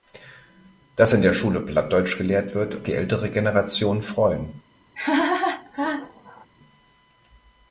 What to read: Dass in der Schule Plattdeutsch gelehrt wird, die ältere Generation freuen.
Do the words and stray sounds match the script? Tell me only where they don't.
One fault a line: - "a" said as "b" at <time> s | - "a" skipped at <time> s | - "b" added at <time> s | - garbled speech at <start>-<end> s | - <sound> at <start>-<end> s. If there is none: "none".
- laugh at 4.9-6.5 s